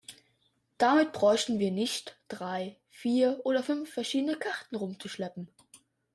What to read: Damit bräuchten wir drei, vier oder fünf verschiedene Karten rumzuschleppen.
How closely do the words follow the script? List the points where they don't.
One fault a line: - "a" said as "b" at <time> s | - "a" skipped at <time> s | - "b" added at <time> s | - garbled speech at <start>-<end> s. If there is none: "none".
- "nicht" added at 1.7 s